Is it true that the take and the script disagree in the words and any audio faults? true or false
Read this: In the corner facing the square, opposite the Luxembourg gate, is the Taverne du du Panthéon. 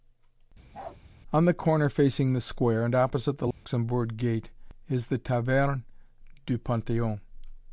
true